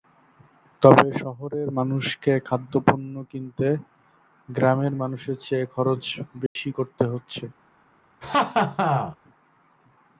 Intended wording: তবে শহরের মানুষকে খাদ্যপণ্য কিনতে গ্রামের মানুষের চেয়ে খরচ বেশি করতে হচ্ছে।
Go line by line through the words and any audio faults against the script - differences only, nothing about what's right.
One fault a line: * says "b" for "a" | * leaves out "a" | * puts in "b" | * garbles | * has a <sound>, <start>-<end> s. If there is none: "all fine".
* has a dropout, 6.5-6.6 s
* has a laugh, 8.2-9.2 s